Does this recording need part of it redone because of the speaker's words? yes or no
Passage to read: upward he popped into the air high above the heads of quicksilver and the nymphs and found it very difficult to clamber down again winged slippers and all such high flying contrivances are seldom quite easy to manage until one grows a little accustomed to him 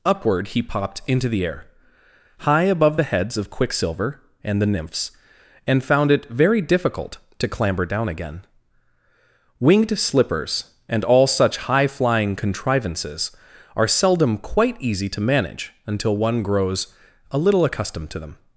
yes